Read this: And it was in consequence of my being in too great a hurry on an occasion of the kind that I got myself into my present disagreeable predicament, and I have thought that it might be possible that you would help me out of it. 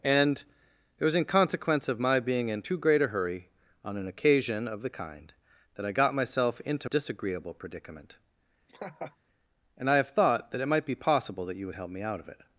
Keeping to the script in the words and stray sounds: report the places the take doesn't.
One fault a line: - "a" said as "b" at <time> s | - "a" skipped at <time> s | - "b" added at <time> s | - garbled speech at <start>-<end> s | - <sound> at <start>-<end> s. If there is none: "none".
- "my present" skipped at 6.9 s
- laugh at 8.7-9.2 s